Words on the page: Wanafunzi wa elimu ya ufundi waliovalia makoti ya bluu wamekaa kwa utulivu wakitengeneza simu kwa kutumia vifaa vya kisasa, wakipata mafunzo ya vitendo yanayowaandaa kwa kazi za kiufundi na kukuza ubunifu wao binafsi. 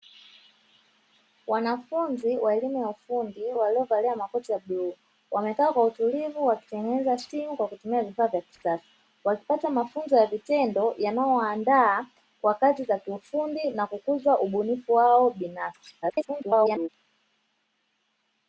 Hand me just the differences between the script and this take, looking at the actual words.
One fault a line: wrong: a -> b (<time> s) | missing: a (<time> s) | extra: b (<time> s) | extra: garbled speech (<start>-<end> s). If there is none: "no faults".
extra: garbled speech (16.0-16.9 s)